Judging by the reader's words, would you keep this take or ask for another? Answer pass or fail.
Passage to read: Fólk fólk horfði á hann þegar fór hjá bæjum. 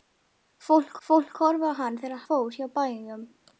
pass